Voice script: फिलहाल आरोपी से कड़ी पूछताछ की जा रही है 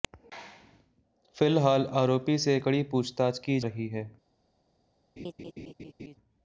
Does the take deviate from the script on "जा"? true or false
true